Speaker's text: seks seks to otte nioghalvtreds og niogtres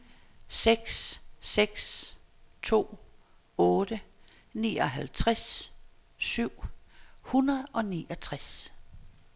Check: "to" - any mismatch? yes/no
no